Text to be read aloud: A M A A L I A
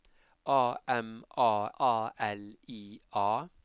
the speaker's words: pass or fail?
pass